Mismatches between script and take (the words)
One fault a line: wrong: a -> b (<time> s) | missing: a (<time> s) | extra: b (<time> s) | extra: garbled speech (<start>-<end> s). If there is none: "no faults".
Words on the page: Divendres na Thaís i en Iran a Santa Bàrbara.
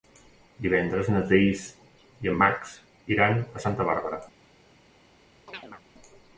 extra: Max (2.4 s)